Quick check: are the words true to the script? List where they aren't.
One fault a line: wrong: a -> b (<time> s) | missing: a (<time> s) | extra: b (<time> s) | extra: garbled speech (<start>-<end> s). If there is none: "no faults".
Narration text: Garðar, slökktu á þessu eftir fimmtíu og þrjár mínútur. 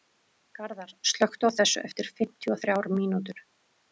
no faults